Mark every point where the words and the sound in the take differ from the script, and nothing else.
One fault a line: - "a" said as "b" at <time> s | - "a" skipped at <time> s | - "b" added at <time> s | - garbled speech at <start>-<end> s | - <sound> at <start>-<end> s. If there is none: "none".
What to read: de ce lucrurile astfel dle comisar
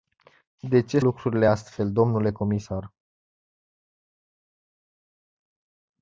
none